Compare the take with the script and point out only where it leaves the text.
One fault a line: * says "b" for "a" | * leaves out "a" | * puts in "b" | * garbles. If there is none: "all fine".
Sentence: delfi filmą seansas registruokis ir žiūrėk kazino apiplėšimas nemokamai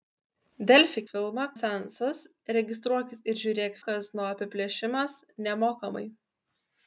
all fine